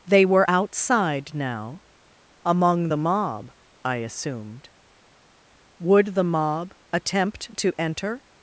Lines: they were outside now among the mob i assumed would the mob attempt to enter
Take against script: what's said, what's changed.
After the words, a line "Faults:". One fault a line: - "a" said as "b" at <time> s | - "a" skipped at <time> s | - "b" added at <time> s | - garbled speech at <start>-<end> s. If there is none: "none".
they were outside now among the mob i assumed would the mob attempt to enter
Faults:
none